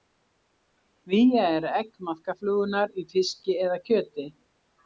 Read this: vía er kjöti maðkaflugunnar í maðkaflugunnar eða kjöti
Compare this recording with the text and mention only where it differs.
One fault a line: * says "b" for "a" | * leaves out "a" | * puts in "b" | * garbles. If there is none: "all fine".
* says "egg" for "kjöti"
* says "fiski" for "maðkaflugunnar"